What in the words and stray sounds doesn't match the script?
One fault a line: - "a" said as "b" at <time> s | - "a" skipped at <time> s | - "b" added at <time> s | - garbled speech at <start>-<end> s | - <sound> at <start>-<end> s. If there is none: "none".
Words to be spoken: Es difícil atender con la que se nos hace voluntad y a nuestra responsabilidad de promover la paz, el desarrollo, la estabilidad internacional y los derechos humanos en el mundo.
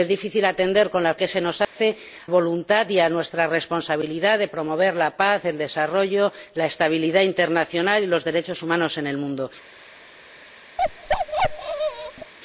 - dropout at 1.6-1.8 s
- bark at 10.8-12.3 s